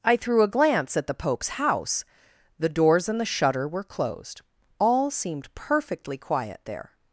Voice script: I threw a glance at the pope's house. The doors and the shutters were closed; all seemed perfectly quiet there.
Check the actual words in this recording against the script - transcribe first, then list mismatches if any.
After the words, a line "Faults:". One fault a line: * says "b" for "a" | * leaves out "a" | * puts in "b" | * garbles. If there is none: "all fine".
I threw a glance at the pope's house. The doors and the shutter were closed; all seemed perfectly quiet there.
Faults:
* says "shutter" for "shutters"